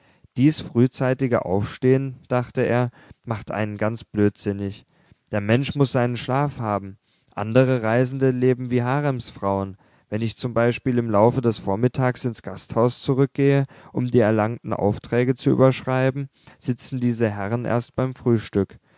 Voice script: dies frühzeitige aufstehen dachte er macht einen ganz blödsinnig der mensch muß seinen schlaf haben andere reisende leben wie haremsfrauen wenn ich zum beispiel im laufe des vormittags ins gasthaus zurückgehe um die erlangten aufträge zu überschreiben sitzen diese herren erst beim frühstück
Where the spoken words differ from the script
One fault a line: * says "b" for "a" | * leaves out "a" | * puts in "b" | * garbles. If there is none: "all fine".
all fine